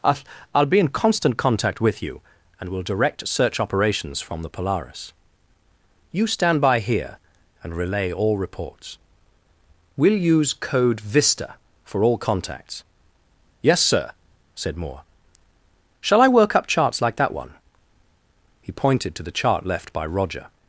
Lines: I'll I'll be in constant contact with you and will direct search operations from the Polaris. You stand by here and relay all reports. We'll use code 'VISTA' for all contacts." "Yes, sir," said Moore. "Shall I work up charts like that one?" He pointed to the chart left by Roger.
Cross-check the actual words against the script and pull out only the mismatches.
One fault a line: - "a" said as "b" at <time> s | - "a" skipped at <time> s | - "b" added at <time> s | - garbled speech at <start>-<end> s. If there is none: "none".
none